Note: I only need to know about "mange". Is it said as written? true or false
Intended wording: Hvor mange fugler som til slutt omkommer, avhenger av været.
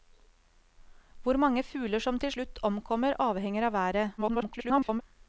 true